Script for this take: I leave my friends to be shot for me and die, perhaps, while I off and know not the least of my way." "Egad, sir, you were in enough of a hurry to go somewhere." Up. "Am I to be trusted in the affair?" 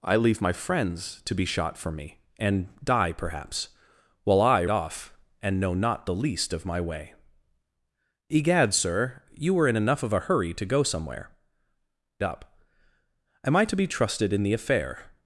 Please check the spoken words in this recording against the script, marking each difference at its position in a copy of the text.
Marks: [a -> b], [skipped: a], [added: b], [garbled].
I leave my friends to be shot for me and die, perhaps, while I off and know not the least of my way." "Egad, sir, you were in enough of a hurry to go somewhere." Up. "Am I to be trusted in the affair?"